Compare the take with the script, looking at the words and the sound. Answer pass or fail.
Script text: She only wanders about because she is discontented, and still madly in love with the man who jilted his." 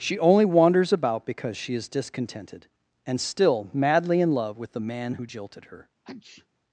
fail